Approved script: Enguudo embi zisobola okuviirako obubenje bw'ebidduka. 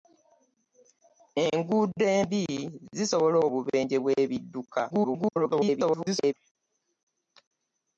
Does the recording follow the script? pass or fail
fail